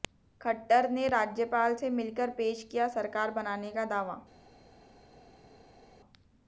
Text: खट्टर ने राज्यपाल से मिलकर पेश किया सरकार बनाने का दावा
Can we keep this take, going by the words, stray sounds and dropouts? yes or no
yes